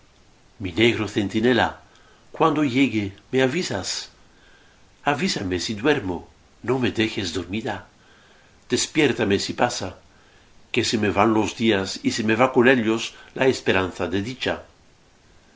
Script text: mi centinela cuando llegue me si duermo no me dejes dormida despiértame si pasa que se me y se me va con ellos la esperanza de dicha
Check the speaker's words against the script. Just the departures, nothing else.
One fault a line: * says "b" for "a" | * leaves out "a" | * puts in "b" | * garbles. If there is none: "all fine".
* puts in "negro"
* puts in "avisas avísame"
* puts in "van los días"